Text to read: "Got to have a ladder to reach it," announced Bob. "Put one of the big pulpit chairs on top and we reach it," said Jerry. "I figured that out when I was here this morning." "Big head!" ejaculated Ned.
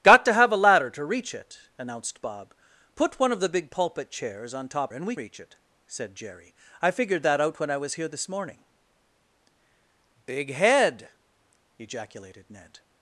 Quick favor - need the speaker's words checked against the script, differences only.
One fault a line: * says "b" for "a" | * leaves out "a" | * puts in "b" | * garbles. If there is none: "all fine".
all fine